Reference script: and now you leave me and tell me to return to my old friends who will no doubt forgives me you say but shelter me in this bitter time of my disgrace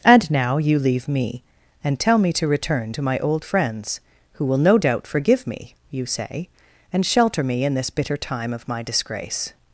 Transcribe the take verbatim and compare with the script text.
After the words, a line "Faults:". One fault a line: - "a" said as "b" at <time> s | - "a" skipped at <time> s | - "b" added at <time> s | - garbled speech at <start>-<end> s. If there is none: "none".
and now you leave me and tell me to return to my old friends who will no doubt forgive me you say and shelter me in this bitter time of my disgrace
Faults:
- "forgives" said as "forgive" at 5.1 s
- "but" said as "and" at 6.9 s